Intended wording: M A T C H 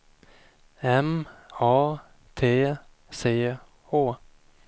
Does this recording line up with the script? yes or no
yes